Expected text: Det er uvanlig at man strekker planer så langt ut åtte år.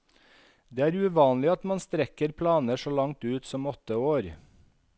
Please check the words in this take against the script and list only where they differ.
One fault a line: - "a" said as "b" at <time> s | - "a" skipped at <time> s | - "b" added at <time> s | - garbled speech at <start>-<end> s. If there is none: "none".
- "som" added at 3.5 s